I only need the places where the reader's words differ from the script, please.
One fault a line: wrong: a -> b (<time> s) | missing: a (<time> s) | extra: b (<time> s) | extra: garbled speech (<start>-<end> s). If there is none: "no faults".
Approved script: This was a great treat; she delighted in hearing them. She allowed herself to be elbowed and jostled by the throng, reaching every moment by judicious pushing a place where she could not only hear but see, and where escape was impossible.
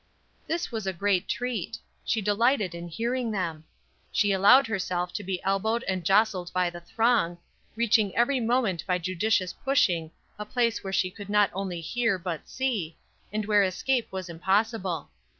no faults